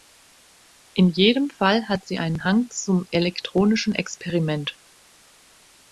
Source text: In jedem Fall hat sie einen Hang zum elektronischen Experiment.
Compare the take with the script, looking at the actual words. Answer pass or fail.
pass